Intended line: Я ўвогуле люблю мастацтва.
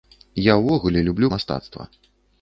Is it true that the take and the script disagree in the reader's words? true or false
false